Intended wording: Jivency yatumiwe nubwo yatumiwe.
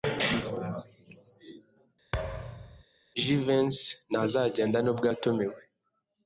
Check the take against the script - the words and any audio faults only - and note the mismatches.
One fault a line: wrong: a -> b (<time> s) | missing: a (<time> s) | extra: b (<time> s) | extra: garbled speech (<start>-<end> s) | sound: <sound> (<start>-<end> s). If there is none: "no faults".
sound: thud (2.1-2.8 s)
wrong: yatumiwe -> ntazagenda (4.1 s)